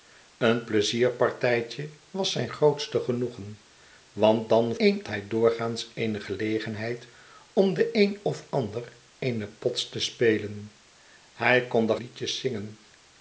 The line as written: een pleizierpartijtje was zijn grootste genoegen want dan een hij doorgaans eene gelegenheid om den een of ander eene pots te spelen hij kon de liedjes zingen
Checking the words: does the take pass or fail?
pass